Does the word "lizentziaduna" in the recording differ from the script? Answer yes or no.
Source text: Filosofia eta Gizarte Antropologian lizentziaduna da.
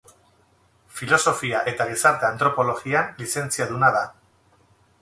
no